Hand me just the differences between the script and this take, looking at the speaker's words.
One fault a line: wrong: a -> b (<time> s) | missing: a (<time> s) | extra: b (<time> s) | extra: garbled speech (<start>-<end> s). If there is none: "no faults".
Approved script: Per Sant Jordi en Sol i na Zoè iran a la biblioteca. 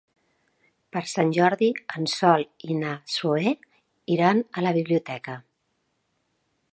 no faults